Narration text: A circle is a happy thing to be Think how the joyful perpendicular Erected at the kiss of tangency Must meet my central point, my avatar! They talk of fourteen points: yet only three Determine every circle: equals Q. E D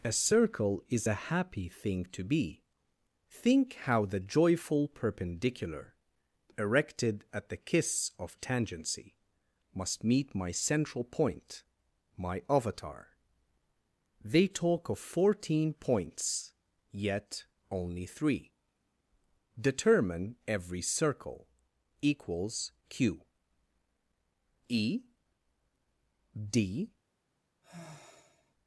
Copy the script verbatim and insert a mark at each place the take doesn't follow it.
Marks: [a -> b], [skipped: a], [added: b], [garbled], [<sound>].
A circle is a happy thing to be Think how the joyful perpendicular Erected at the kiss of tangency Must meet my central point, my avatar! They talk of fourteen points: yet only three Determine every circle: equals Q. E D [sigh]